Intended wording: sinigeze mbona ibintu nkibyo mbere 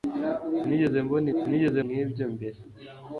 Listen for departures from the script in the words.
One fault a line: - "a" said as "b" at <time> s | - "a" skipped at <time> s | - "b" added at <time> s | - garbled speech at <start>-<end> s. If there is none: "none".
- "ibintu" said as "sinigeze" at 1.4 s